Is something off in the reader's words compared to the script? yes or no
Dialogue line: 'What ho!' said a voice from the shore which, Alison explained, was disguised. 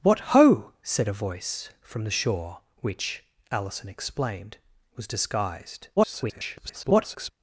yes